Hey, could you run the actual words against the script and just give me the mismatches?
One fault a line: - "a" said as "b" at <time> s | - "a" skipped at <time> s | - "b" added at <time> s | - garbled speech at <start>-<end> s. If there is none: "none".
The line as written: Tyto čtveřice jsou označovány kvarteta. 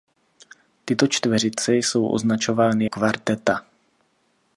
none